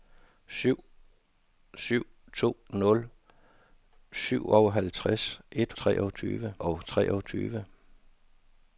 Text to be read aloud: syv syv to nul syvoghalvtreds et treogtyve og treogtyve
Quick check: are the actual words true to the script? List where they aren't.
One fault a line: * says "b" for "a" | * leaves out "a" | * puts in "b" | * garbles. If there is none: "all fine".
all fine